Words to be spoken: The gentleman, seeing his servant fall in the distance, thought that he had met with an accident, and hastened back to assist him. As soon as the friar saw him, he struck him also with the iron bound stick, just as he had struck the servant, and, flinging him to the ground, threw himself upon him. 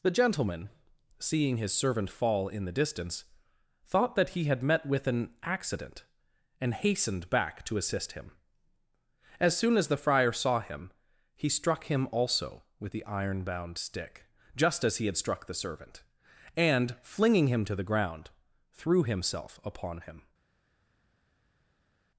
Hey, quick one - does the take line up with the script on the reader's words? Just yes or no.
yes